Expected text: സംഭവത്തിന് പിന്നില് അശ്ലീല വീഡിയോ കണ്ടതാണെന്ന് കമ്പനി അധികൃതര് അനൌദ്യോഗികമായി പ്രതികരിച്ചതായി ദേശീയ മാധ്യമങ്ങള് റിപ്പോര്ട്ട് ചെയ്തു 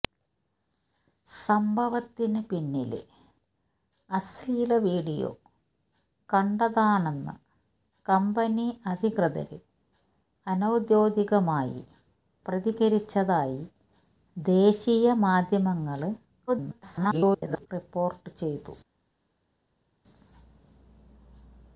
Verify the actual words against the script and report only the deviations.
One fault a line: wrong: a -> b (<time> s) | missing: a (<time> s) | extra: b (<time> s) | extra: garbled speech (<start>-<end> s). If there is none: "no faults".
extra: garbled speech (16.5-17.7 s)